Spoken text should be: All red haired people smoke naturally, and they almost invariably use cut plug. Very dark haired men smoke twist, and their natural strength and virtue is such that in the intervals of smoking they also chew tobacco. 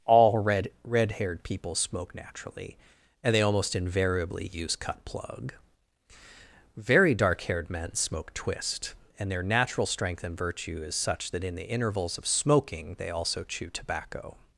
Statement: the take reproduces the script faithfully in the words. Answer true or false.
false